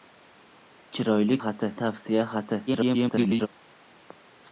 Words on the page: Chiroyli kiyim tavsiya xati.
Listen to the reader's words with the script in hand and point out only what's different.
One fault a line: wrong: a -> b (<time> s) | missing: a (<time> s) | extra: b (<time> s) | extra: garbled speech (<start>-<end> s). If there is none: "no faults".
wrong: kiyim -> xati (1.4 s)
extra: garbled speech (2.7-3.5 s)